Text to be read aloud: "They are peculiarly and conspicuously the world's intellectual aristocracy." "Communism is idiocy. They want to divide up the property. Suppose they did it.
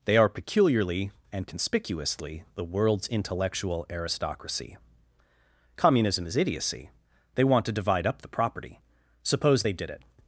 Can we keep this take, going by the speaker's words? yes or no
yes